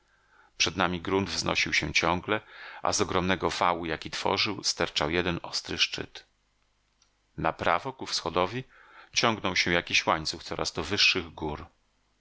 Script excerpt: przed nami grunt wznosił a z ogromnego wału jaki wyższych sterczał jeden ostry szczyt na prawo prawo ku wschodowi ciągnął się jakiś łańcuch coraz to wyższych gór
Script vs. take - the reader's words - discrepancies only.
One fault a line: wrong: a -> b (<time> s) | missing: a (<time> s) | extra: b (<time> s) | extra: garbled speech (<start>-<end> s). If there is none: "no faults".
extra: się ciągle (1.7 s)
wrong: wyższych -> tworzył (4.1 s)
missing: prawo (7.9 s)